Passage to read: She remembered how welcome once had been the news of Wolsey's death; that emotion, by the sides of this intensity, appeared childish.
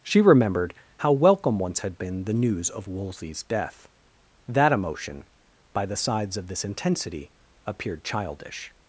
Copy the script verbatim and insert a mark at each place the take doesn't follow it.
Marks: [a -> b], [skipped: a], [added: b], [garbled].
She remembered how welcome once had been the news of Wolsey's death; that emotion, by the sides of this intensity, appeared childish.